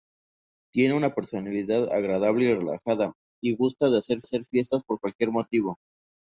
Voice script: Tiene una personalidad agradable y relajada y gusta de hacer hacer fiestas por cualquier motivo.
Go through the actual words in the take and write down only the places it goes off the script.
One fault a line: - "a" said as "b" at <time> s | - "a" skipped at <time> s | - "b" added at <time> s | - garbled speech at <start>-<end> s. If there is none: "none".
none